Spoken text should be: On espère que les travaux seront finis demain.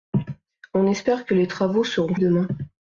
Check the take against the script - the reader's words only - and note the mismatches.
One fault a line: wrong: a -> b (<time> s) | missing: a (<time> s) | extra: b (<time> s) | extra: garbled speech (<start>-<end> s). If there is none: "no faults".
missing: finis (2.1 s)